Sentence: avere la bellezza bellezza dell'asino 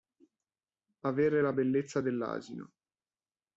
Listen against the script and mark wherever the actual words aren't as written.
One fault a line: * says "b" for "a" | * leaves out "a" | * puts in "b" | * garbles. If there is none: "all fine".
* leaves out "bellezza"